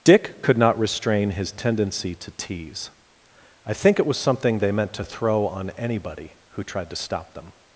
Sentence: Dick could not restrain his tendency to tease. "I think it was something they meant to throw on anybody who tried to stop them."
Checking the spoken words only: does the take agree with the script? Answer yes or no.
yes